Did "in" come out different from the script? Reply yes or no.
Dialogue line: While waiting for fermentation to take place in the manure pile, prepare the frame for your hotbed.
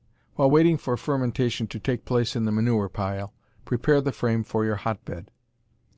no